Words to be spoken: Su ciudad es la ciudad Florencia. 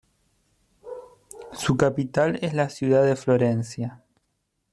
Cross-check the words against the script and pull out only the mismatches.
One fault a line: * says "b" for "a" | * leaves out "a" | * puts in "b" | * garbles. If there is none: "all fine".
* says "capital" for "ciudad"
* puts in "de"